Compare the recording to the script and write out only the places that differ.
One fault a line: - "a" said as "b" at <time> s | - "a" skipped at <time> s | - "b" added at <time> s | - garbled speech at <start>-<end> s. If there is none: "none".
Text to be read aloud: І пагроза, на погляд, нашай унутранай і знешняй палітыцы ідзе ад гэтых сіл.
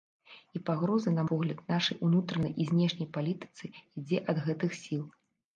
none